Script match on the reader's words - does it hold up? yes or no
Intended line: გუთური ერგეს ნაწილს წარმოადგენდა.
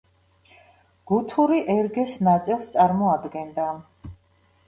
yes